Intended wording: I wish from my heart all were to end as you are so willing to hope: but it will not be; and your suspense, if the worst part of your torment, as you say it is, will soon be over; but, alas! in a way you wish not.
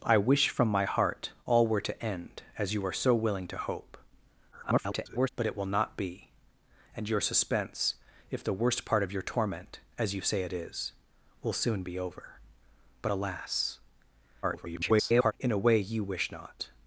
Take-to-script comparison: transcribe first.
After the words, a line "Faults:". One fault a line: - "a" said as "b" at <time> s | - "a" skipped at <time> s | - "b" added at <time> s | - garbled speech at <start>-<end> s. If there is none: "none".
I wish from my heart all were to end as you are so willing to hope: [garbled] but it will not be; and your suspense, if the worst part of your torment, as you say it is, will soon be over; but, alas! [garbled] in a way you wish not.
Faults:
- garbled speech at 4.5-5.3 s
- garbled speech at 14.4-15.3 s